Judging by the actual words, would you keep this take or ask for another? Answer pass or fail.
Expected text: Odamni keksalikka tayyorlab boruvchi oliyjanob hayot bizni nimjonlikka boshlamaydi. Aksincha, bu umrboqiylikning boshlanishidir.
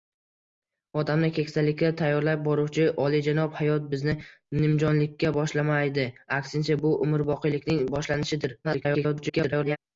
fail